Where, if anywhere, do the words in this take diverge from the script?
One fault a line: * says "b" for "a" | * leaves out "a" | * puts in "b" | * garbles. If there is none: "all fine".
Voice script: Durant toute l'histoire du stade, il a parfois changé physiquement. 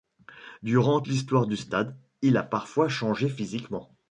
* leaves out "toute"